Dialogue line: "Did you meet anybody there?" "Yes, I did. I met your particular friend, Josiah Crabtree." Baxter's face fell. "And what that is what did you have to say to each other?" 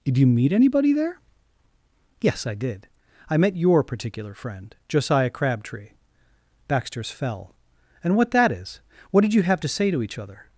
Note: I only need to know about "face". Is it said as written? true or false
false